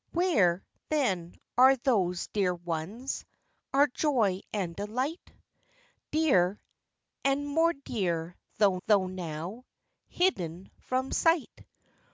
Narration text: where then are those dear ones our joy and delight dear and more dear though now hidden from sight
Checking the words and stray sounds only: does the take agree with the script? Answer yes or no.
no